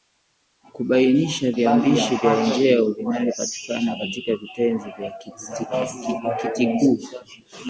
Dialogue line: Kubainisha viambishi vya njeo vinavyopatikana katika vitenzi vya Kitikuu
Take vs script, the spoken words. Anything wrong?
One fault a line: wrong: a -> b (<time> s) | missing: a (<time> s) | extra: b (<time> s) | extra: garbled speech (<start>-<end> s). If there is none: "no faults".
no faults